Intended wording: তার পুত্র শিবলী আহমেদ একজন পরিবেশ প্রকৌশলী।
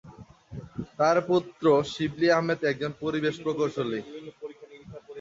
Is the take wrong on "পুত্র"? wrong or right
right